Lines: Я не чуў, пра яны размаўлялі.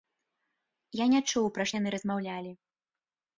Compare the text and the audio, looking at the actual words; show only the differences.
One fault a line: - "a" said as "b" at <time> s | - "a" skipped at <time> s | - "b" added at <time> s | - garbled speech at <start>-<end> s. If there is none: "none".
none